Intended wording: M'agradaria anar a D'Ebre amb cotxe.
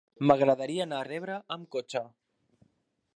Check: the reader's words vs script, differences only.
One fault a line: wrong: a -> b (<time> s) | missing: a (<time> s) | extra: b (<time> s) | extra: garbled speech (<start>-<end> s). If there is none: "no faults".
no faults